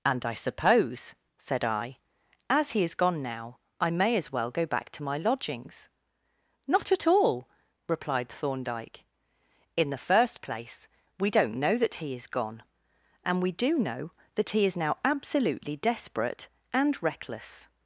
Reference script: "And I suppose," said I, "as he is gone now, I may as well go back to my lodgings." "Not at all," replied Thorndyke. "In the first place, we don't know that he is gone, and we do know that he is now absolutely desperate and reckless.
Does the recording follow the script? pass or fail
pass